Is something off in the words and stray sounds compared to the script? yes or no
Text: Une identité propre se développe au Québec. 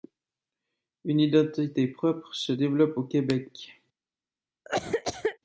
yes